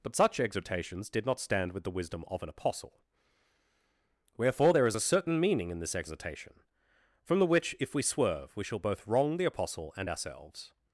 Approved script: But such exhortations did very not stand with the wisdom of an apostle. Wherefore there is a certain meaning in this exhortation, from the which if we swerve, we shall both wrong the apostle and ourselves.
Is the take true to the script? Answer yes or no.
no